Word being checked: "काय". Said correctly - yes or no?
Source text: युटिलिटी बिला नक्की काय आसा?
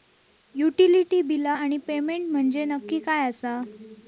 yes